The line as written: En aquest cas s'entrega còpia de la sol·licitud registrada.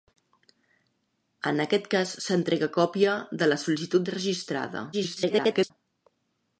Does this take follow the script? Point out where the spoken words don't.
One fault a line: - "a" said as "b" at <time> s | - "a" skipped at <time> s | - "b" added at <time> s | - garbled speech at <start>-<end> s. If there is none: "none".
- garbled speech at 4.9-5.7 s